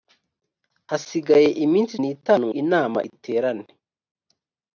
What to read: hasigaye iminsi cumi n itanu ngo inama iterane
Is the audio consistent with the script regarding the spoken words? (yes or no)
no